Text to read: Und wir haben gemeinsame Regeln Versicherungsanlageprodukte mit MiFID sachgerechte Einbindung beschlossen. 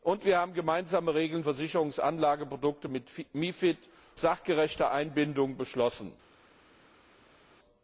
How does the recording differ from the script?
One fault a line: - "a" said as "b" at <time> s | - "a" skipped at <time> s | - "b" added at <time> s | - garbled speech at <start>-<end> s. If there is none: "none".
none